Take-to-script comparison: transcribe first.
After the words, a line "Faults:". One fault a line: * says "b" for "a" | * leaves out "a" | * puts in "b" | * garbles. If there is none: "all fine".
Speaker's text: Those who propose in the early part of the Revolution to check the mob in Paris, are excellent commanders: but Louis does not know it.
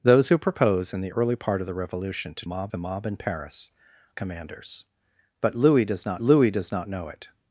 Those who propose in the early part of the Revolution to mob the mob in Paris, commanders: but Louis does not Louis does not know it.
Faults:
* says "mob" for "check"
* says "commanders but Louis does not" for "are excellent commanders but"